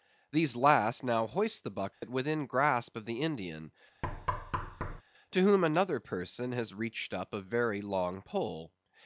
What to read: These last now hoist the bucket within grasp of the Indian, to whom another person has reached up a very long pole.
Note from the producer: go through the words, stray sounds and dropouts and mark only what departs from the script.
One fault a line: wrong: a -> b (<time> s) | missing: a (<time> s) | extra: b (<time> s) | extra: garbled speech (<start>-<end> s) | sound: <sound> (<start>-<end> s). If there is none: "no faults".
sound: dropout (1.9-2.0 s)
sound: thud (4.0-5.0 s)